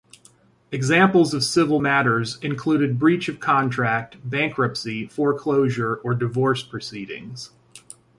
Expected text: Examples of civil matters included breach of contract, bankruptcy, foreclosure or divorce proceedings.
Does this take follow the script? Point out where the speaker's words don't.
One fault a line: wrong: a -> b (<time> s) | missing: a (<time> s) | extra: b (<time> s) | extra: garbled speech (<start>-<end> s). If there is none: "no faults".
no faults